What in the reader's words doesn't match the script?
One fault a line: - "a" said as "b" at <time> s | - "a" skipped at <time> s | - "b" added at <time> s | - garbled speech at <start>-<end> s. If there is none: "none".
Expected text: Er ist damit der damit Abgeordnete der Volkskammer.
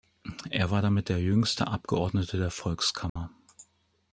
- "ist" said as "war" at 0.7 s
- "damit" said as "jüngste" at 1.2 s